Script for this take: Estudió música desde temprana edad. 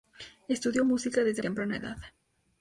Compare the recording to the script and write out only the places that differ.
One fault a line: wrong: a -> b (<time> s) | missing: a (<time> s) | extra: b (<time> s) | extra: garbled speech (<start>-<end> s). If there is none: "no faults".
no faults